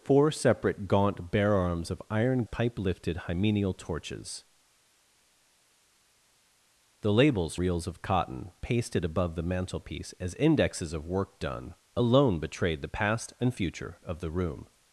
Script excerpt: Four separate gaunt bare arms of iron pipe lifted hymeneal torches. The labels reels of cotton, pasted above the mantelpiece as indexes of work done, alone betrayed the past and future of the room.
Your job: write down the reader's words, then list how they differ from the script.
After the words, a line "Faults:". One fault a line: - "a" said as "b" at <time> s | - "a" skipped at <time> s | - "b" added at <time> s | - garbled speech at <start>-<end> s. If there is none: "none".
Four separate gaunt bare arms of iron pipe lifted hymeneal torches. The labels reels of cotton, pasted above the mantelpiece as indexes of work done, alone betrayed the past and future of the room.
Faults:
none